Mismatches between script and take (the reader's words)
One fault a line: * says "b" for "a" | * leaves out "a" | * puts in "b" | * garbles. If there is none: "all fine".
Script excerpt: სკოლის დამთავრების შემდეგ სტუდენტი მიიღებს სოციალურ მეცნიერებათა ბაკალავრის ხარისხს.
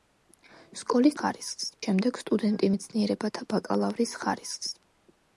* says "ხარისხს" for "დამთავრების"
* leaves out "მიიღებს სოციალურ"